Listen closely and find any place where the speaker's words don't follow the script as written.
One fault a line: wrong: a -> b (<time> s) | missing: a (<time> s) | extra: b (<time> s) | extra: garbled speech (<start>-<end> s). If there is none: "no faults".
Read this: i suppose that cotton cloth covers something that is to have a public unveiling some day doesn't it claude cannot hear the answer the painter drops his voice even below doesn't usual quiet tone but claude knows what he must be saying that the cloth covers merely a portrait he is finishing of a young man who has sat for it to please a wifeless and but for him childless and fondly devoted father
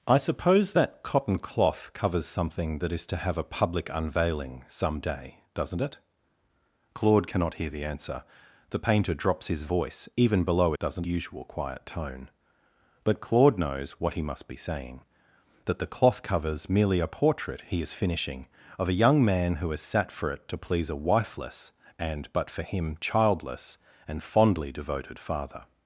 no faults